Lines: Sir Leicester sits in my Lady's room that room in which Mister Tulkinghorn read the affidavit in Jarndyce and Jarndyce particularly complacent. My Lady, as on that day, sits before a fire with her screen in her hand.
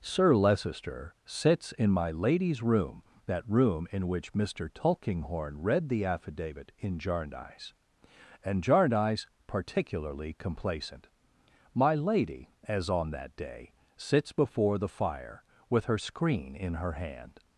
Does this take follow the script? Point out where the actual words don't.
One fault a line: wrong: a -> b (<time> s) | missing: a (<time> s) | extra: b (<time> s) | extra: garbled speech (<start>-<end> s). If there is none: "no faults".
wrong: a -> the (14.8 s)